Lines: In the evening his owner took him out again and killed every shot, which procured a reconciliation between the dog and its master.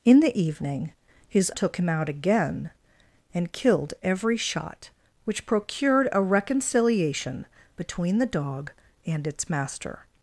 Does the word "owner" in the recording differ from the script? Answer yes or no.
yes